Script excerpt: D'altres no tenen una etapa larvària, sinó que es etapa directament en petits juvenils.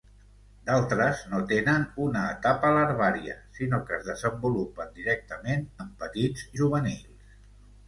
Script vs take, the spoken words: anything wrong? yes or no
yes